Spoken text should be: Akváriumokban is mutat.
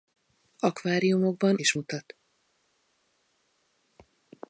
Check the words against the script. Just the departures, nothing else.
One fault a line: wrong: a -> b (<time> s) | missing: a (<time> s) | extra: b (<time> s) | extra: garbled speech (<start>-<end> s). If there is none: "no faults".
no faults